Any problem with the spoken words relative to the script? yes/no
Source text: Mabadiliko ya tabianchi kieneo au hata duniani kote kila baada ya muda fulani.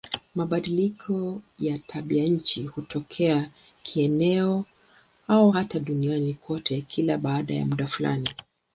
yes